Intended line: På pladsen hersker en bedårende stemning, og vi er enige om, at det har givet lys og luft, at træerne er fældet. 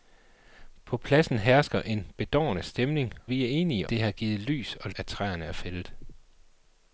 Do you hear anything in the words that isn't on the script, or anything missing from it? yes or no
yes